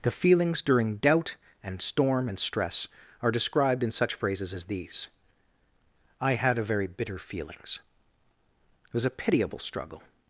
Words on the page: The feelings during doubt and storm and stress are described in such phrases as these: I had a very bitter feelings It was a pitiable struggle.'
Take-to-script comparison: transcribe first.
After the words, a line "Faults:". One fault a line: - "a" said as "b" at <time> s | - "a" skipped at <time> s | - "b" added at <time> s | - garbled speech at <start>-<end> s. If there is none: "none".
The feelings during doubt and storm and stress are described in such phrases as these: I had a very bitter feelings It was a pitiable struggle.'
Faults:
none